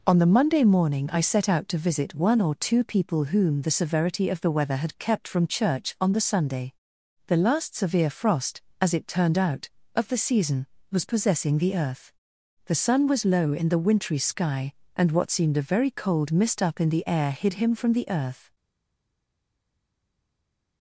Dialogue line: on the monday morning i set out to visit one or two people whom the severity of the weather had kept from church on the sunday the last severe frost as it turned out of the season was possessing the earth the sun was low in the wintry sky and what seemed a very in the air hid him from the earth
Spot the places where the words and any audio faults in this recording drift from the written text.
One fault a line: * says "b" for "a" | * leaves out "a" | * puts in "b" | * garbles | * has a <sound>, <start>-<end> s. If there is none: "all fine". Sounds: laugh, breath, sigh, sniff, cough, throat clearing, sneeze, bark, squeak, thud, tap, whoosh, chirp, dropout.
* puts in "cold mist up"